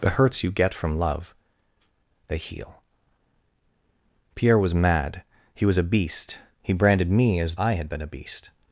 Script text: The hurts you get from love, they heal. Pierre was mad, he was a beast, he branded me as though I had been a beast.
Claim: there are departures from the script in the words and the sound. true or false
true